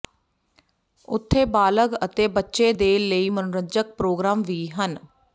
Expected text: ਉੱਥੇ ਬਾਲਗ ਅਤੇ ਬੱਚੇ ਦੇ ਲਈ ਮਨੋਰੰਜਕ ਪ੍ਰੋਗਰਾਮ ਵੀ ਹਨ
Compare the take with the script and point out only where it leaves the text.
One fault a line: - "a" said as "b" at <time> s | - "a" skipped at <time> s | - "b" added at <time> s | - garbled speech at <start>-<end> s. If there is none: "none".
none